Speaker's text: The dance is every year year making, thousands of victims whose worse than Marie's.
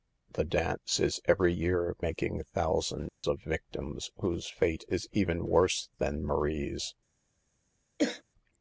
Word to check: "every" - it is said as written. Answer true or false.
true